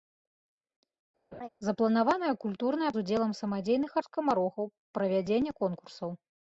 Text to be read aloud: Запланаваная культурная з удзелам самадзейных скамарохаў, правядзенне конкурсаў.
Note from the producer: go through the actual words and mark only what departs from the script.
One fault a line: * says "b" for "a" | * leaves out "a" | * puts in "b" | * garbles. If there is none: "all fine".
all fine